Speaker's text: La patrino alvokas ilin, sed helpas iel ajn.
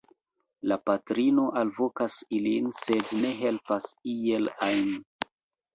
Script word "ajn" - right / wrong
right